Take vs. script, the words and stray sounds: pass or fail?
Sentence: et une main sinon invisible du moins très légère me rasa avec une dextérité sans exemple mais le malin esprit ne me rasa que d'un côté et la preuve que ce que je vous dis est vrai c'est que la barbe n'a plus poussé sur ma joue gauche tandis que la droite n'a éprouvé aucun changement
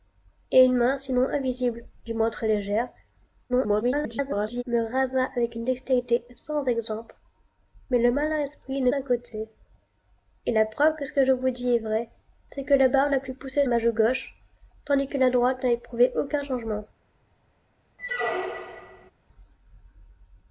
fail